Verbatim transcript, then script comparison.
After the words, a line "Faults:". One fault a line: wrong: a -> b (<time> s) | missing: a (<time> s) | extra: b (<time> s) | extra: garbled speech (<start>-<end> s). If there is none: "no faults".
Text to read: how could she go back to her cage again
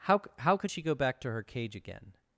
how how could she go back to her cage again
Faults:
extra: how (0.4 s)